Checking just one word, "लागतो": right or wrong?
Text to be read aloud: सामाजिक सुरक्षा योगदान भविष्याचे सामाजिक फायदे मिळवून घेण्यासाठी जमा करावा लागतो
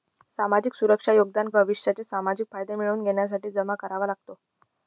right